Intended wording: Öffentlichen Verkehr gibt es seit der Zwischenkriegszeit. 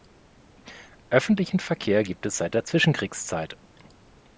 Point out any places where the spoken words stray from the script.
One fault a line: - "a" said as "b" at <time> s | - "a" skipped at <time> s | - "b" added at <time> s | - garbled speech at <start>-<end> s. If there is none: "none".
none